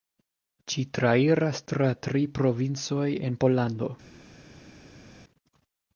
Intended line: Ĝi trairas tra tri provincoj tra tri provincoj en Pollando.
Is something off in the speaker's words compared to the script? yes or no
yes